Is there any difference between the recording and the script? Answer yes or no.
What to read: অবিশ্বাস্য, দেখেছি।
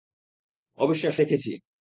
no